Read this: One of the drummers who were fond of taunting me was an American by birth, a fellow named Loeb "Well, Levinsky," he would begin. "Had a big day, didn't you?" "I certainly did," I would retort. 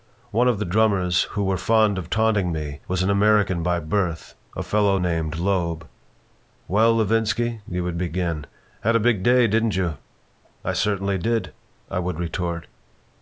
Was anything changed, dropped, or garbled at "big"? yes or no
no